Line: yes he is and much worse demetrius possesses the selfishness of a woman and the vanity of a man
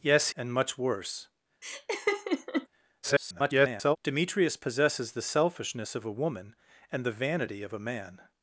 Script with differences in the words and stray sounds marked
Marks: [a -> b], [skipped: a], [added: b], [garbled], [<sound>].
yes [skipped: he is] and much worse [laugh] [garbled] demetrius possesses the selfishness of a woman and the vanity of a man